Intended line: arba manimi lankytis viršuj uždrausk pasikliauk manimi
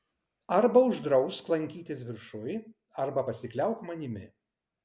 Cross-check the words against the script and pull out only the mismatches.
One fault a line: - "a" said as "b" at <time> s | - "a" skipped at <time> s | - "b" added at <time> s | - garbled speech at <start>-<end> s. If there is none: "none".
- "manimi" said as "uždrausk" at 0.9 s
- "uždrausk" said as "arba" at 3.1 s